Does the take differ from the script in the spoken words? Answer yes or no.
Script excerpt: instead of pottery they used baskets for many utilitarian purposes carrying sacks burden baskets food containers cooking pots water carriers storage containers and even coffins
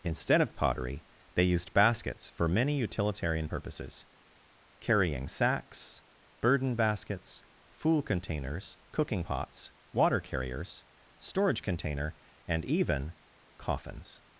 yes